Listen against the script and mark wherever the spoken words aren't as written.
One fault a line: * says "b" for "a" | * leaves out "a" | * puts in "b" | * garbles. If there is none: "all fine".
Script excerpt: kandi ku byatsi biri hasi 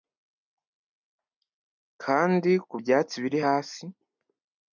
all fine